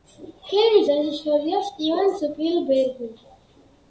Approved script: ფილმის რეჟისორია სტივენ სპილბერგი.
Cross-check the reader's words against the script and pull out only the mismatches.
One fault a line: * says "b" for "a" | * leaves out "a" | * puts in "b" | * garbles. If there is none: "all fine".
all fine